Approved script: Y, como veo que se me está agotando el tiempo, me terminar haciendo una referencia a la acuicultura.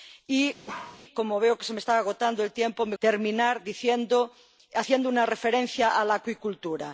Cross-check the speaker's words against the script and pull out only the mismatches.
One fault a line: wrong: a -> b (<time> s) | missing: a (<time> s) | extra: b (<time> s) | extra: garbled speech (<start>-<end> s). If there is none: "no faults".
no faults